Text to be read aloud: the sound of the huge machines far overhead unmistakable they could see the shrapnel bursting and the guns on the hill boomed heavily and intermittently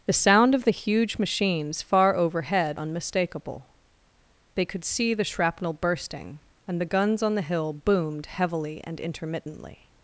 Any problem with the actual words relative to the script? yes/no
no